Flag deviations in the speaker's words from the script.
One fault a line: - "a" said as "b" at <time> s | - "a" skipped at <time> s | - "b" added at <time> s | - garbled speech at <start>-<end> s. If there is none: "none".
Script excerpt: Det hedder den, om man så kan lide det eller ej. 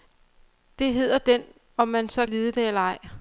- "kan" skipped at 2.2 s